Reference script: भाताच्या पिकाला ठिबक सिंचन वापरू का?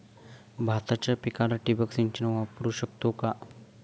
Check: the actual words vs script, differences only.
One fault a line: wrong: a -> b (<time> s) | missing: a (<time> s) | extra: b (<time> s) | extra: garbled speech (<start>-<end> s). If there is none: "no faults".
extra: शकतो (2.7 s)